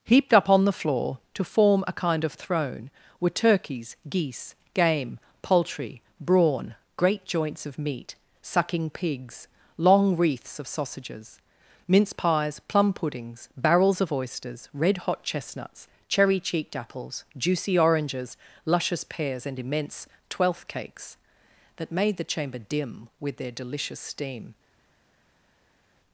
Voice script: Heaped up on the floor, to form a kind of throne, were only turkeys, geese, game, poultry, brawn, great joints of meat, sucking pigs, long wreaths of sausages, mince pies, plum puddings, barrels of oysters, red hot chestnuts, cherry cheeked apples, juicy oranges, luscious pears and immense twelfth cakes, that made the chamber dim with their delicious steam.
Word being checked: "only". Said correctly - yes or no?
no